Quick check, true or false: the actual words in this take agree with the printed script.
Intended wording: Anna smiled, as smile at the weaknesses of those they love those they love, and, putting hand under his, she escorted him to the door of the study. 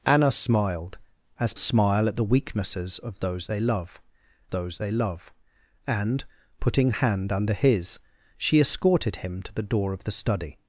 true